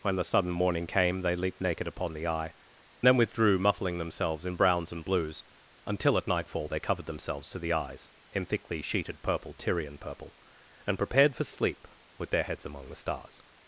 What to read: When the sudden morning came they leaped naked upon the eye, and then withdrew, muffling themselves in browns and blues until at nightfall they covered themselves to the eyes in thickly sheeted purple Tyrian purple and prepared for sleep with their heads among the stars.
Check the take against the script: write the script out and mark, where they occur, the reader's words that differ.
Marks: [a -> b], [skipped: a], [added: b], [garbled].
When the sudden morning came they leaped naked upon the eye, [skipped: and] then withdrew, muffling themselves in browns and blues until at nightfall they covered themselves to the eyes in thickly sheeted purple Tyrian purple and prepared for sleep with their heads among the stars.